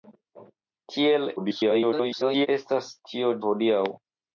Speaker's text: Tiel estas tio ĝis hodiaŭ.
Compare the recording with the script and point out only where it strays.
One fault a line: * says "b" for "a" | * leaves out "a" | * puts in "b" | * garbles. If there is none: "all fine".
* garbles
* leaves out "ĝis"